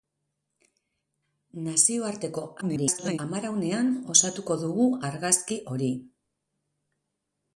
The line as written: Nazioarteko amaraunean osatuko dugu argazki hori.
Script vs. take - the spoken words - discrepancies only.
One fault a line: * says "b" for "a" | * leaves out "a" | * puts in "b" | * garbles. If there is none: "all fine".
* garbles